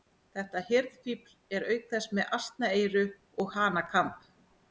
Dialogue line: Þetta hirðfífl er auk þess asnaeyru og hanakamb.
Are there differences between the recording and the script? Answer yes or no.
yes